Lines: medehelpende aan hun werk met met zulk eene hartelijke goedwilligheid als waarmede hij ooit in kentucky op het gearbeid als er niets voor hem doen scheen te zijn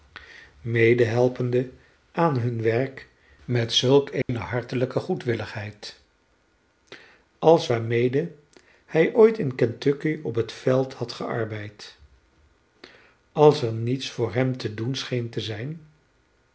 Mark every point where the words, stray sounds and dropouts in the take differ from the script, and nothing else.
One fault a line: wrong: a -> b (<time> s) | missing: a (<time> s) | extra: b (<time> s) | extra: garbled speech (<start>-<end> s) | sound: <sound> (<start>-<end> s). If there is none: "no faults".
missing: met (3.7 s)
sound: dropout (4.2-4.3 s)
extra: veld had (10.5 s)
extra: te (14.6 s)